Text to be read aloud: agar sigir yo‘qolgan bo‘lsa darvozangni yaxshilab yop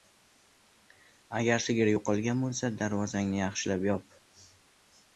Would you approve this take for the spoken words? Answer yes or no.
yes